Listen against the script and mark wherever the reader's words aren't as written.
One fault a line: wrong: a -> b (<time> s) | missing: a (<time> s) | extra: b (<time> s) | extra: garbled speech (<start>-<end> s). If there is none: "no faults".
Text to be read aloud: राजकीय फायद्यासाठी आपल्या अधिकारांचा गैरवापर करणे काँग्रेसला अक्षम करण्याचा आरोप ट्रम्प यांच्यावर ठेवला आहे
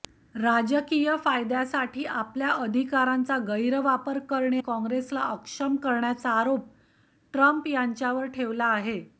no faults